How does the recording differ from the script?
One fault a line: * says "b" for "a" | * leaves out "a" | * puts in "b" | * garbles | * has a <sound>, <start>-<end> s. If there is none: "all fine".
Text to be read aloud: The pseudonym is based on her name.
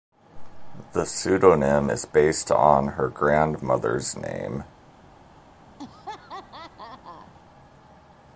* puts in "grandmother's"
* has a laugh, 5.8-7.3 s